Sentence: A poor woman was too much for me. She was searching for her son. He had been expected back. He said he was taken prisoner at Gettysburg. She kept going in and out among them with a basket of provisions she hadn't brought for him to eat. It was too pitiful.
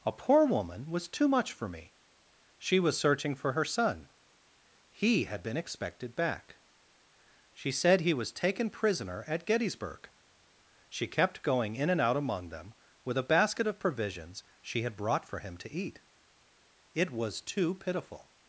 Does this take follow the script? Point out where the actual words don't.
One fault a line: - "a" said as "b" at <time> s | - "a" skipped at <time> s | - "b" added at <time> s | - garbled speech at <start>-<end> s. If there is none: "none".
- "He" said as "She" at 7.5 s
- "hadn't" said as "had" at 14.8 s